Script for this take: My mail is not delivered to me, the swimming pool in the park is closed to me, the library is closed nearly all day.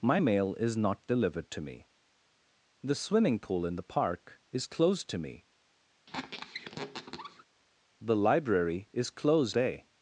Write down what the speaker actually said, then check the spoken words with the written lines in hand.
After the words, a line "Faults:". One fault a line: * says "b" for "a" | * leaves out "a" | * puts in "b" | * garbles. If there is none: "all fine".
My mail is not delivered to me, the swimming pool in the park is closed to me, the library is closed day.
Faults:
* leaves out "nearly all"